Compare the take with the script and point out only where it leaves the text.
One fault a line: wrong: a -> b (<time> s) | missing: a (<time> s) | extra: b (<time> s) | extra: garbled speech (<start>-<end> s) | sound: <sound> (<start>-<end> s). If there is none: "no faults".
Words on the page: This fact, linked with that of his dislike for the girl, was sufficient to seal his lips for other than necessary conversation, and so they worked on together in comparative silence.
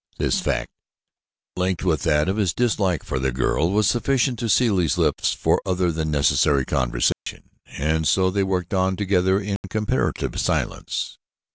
sound: dropout (7.1-7.3 s)
sound: dropout (9.6-9.6 s)